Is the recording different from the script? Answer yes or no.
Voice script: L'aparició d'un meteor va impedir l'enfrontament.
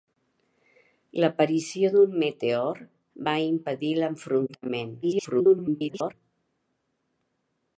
yes